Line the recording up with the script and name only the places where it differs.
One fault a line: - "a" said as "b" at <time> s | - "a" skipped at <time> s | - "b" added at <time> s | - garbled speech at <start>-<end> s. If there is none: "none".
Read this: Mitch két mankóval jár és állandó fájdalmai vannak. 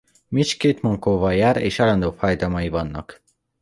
none